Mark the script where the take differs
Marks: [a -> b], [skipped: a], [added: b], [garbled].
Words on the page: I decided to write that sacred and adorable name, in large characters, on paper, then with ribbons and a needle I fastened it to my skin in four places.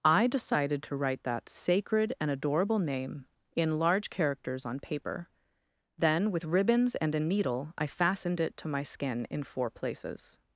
I decided to write that sacred and adorable name, in large characters, on paper, then with ribbons and a needle I fastened it to my skin in four places.